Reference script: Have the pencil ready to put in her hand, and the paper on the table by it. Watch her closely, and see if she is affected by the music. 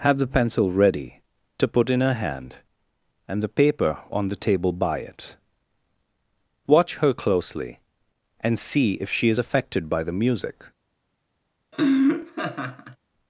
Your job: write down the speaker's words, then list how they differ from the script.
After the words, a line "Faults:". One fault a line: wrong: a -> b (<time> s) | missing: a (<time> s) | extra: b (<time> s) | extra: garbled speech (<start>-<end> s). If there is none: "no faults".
Have the pencil ready to put in her hand, and the paper on the table by it. Watch her closely, and see if she is affected by the music.
Faults:
no faults